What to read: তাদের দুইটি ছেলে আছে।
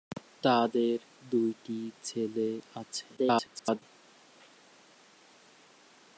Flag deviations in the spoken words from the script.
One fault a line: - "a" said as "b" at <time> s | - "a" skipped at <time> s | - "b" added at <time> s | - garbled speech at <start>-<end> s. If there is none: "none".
- garbled speech at 3.2-3.8 s